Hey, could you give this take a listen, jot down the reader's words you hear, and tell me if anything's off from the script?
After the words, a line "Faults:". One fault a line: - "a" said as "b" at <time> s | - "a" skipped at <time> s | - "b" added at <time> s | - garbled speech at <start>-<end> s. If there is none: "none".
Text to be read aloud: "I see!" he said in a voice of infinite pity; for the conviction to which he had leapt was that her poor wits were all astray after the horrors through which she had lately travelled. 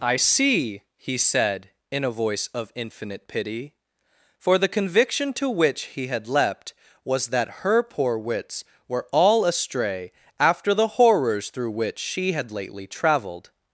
"I see!" he said in a voice of infinite pity; for the conviction to which he had leapt was that her poor wits were all astray after the horrors through which she had lately travelled.
Faults:
none